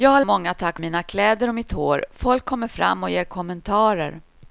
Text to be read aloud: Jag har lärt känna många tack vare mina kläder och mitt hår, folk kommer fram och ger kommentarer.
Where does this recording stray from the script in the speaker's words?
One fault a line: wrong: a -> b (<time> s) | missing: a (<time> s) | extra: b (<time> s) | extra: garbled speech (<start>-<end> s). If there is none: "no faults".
missing: lärt känna (0.2 s)
missing: vare (0.8 s)